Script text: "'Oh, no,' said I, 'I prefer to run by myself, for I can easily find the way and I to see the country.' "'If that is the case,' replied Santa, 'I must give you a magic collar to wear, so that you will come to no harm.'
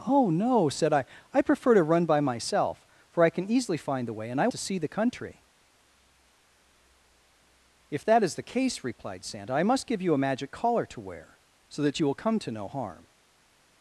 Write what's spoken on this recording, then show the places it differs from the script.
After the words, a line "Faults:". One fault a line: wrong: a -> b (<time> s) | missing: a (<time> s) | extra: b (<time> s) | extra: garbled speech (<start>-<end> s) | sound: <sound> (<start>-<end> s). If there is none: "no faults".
"'Oh, no,' said I, 'I prefer to run by myself, for I can easily find the way and I to see the country.' "'If that is the case,' replied Santa, 'I must give you a magic collar to wear, so that you will come to no harm.'
Faults:
no faults